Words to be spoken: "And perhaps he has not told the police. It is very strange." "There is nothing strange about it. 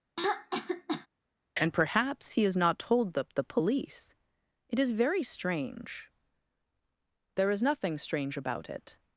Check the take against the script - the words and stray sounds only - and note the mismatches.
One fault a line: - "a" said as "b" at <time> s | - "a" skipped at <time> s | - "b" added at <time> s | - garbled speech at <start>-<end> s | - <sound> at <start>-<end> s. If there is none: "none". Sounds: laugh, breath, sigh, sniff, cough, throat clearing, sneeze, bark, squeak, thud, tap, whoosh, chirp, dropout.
- throat clearing at 0.2-1.1 s
- "the" added at 3.3 s